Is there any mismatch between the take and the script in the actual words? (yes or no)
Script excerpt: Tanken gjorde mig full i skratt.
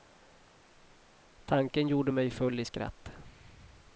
no